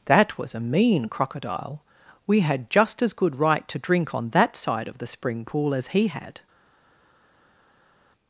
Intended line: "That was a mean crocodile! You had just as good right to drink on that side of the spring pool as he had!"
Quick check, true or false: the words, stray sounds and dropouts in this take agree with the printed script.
false